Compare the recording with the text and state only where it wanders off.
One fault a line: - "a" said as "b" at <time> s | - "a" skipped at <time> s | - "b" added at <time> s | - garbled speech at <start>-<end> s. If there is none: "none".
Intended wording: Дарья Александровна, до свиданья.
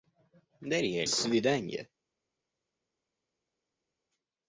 - "Александровна до" skipped at 1.0 s